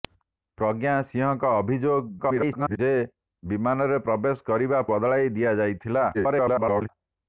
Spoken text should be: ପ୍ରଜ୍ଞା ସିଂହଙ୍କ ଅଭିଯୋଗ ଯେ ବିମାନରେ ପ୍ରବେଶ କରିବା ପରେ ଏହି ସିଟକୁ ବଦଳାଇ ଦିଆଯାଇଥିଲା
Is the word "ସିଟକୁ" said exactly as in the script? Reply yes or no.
no